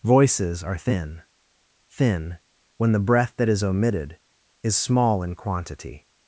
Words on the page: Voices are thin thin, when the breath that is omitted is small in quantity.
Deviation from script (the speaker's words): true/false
false